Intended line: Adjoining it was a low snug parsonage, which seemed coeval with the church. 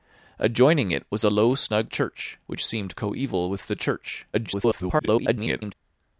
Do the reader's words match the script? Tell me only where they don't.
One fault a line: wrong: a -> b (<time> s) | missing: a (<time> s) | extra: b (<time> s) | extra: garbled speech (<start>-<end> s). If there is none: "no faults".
wrong: parsonage -> church (1.9 s)
extra: garbled speech (4.3-5.7 s)